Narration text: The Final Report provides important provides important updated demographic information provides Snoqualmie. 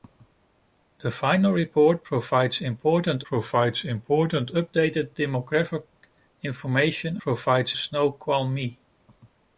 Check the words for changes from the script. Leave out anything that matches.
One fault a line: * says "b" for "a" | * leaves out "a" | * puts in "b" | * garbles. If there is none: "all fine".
all fine